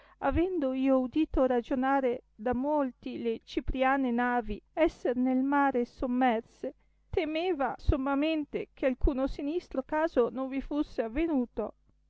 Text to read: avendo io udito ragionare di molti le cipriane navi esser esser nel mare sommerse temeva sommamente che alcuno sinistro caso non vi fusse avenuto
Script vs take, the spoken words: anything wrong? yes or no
yes